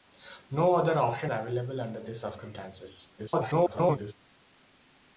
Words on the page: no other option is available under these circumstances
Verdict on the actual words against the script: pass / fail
fail